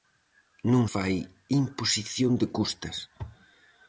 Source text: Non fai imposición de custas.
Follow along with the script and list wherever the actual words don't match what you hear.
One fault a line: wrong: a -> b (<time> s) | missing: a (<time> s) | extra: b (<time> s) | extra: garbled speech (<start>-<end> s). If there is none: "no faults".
no faults